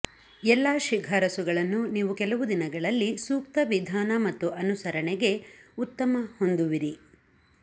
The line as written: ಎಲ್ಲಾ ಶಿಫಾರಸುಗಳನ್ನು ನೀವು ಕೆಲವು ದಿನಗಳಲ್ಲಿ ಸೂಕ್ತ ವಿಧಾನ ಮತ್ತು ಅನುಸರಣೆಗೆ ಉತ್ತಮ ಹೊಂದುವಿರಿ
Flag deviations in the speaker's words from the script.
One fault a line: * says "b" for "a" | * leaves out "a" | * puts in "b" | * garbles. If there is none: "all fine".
all fine